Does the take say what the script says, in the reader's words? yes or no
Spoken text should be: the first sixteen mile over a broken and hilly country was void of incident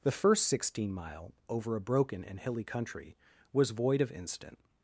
yes